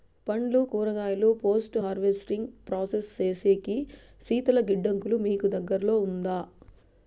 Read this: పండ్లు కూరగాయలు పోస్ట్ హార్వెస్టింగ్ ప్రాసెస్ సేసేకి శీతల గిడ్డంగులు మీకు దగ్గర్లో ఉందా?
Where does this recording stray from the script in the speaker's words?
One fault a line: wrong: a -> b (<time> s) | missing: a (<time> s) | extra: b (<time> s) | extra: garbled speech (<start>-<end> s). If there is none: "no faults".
no faults